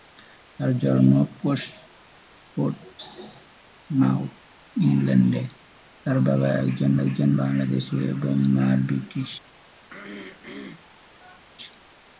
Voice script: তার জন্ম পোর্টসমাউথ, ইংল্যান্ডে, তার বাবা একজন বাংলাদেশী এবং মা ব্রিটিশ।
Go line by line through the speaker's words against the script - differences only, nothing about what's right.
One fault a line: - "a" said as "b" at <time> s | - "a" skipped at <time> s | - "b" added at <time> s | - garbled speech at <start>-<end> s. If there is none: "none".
- "একজন" added at 7.0 s